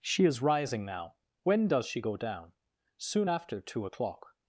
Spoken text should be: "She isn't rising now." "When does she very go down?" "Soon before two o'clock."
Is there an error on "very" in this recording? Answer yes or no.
yes